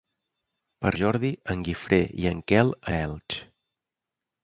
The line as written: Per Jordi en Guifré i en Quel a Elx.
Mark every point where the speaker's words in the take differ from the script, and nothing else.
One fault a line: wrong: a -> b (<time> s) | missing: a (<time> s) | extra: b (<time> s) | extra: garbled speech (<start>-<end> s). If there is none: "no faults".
no faults